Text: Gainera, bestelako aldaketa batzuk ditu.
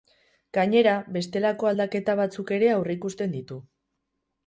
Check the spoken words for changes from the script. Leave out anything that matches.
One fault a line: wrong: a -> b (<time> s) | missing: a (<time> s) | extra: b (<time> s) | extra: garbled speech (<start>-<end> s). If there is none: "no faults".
extra: ere aurreikusten (2.6 s)